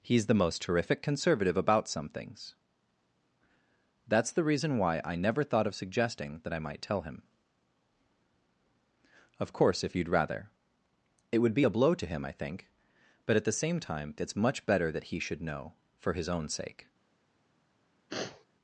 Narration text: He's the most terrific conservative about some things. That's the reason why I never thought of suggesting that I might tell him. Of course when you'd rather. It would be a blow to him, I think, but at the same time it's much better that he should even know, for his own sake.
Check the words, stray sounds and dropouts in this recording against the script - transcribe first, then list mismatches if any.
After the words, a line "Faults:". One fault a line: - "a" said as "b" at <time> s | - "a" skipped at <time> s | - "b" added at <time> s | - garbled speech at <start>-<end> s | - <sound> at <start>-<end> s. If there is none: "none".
He's the most terrific conservative about some things. That's the reason why I never thought of suggesting that I might tell him. Of course if you'd rather. It would be a blow to him, I think, but at the same time it's much better that he should know, for his own sake.
Faults:
- "when" said as "if" at 9.8 s
- "even" skipped at 15.4 s
- sniff at 18.1-18.5 s